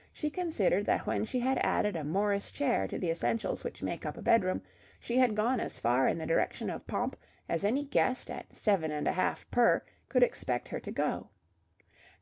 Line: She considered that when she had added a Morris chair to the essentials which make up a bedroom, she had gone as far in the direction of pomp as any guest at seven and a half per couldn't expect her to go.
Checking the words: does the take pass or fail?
fail